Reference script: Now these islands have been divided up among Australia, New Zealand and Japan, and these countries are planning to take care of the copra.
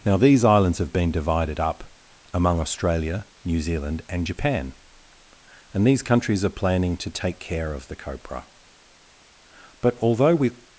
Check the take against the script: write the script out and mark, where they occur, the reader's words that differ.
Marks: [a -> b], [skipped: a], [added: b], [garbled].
Now these islands have been divided up among Australia, New Zealand and Japan, and these countries are planning to take care of the copra. [added: But although we]